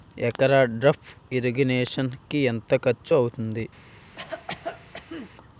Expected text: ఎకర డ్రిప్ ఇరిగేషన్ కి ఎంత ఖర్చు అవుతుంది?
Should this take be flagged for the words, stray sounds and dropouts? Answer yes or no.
yes